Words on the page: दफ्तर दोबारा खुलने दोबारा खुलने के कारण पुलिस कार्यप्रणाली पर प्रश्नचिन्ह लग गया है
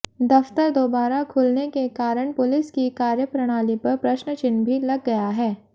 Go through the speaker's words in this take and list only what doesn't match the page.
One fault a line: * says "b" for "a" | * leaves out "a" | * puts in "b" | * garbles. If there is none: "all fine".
* leaves out "दोबारा खुलने"
* puts in "की"
* puts in "भी"